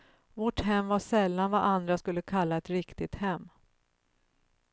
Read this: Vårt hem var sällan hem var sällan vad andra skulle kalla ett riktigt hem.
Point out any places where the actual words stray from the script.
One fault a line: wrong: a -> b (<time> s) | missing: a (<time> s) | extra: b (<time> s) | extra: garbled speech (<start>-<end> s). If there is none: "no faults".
missing: hem var sällan (1.5 s)